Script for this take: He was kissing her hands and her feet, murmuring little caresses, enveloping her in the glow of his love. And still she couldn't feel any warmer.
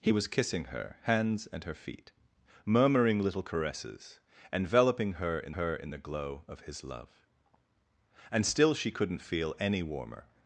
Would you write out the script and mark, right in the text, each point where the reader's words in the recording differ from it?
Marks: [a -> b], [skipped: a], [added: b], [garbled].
He was kissing her hands and her feet, murmuring little caresses, enveloping her in [added: her in] the glow of his love. And still she couldn't feel any warmer.